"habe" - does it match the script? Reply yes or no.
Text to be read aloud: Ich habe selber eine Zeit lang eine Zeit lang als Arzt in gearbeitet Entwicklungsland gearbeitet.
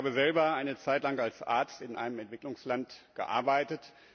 yes